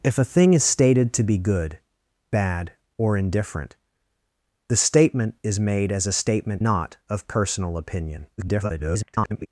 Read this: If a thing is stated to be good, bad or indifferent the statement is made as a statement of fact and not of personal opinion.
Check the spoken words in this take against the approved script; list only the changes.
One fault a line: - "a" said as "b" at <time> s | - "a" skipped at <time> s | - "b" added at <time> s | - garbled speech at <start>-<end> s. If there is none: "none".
- "of fact and" skipped at 6.6 s
- garbled speech at 8.4-9.5 s